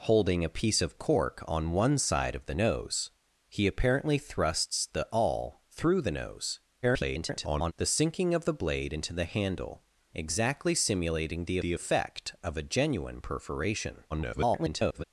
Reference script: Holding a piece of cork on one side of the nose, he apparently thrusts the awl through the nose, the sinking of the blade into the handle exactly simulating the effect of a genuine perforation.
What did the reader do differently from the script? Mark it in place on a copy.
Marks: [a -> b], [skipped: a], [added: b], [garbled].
Holding a piece of cork on one side of the nose, he apparently thrusts the awl through the nose, [garbled] the sinking of the blade into the handle exactly simulating the [added: the] effect of a genuine perforation. [garbled]